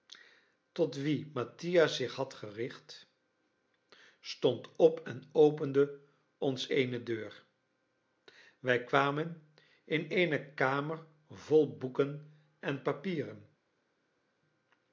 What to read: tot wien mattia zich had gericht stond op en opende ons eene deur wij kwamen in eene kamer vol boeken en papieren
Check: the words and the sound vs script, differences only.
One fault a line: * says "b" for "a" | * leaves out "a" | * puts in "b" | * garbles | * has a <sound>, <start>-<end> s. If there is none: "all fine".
all fine